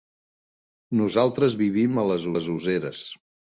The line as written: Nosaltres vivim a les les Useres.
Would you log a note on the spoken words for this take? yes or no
no